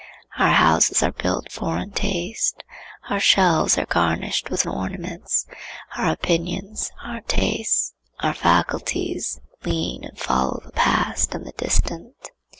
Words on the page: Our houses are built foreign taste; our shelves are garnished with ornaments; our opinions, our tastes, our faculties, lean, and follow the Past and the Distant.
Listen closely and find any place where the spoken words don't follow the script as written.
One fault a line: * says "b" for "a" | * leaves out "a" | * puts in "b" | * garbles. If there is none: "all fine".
all fine